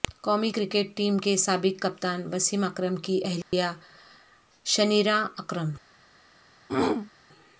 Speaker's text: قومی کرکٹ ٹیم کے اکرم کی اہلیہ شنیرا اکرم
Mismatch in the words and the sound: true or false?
true